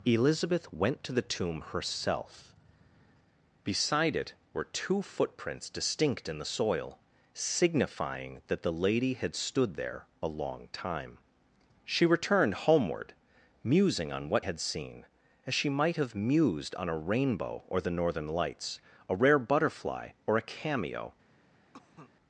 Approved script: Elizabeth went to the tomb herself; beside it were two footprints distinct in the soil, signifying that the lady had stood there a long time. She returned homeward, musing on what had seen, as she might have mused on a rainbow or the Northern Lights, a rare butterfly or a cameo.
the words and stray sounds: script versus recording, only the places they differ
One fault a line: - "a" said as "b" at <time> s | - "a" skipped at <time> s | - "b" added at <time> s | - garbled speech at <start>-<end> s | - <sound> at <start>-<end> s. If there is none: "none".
- cough at 21.7-22.1 s